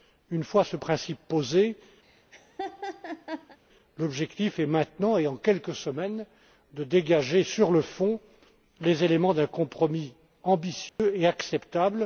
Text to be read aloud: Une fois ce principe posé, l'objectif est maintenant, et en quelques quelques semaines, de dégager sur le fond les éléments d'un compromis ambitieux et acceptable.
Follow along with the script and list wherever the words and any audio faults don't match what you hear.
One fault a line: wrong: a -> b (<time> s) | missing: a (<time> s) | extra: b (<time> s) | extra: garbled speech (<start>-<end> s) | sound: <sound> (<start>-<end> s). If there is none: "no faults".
sound: laugh (2.0-3.6 s)
missing: quelques (5.7 s)
sound: dropout (10.9-11.0 s)